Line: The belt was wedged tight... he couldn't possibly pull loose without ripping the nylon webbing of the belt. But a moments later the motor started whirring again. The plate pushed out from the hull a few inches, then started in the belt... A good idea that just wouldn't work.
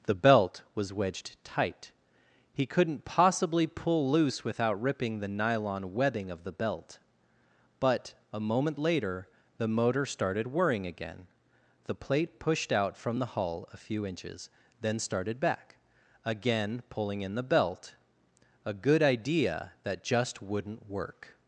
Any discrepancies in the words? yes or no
yes